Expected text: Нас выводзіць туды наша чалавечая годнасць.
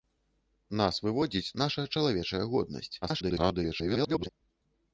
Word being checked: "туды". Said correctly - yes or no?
no